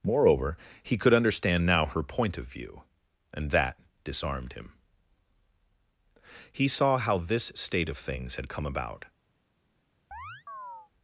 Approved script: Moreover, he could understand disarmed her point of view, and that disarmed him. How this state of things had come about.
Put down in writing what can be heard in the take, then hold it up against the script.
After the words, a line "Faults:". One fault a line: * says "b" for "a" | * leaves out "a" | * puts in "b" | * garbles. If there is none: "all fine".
Moreover, he could understand now her point of view, and that disarmed him. He saw how this state of things had come about.
Faults:
* says "now" for "disarmed"
* puts in "He saw"